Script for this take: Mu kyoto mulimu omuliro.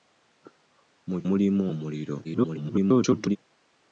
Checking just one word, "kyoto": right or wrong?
wrong